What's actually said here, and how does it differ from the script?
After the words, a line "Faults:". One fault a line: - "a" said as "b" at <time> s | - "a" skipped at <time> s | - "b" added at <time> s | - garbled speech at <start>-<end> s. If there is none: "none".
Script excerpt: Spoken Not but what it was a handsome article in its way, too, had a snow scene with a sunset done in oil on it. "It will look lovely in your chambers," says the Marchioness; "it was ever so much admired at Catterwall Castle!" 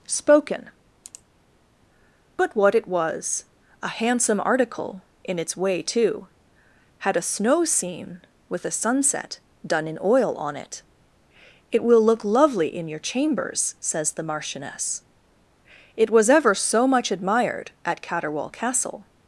Spoken But what it was a handsome article in its way, too, had a snow scene with a sunset done in oil on it. "It will look lovely in your chambers," says the Marchioness; "it was ever so much admired at Catterwall Castle!"
Faults:
- "Not" skipped at 0.7 s